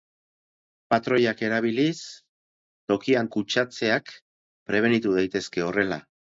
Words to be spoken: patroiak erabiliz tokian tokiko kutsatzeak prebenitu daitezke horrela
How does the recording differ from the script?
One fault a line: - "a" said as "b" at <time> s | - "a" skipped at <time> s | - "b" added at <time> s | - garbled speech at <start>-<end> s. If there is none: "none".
- "tokiko" skipped at 3.3 s